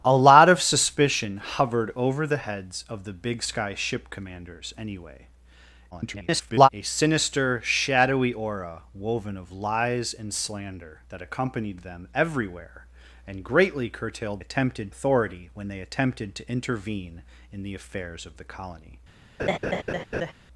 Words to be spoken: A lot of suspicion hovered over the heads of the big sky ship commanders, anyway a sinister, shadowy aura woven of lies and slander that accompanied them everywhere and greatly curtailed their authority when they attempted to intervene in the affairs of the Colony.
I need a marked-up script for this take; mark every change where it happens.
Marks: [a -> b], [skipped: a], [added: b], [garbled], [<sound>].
A lot of suspicion hovered over the heads of the big sky ship commanders, anyway [garbled] a sinister, shadowy aura woven of lies and slander that accompanied them everywhere and greatly curtailed [their -> attempted] authority when they attempted to intervene in the affairs of the Colony. [laugh]